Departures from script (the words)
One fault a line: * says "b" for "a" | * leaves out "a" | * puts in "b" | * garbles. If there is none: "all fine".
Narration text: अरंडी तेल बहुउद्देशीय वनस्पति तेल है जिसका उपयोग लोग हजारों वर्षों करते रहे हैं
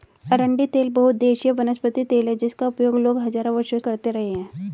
all fine